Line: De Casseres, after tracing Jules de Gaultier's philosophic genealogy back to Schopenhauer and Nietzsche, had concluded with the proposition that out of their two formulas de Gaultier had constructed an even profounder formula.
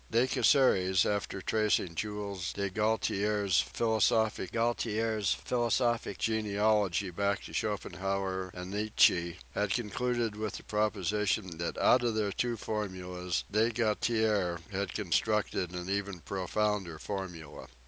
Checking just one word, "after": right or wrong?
right